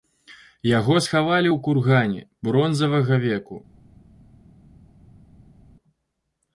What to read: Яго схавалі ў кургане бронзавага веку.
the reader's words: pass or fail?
pass